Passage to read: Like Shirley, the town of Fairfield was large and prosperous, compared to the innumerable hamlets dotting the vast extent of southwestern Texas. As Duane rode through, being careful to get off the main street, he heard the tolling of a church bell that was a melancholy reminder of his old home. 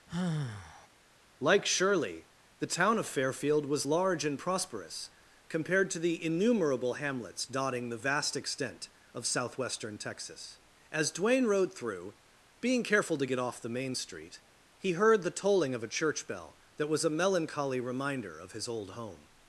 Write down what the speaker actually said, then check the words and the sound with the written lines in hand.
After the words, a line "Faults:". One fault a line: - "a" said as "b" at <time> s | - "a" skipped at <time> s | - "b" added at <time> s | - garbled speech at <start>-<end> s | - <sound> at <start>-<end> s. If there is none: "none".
Like Shirley, the town of Fairfield was large and prosperous, compared to the innumerable hamlets dotting the vast extent of southwestern Texas. As Duane rode through, being careful to get off the main street, he heard the tolling of a church bell that was a melancholy reminder of his old home.
Faults:
- sigh at 0.1-0.9 s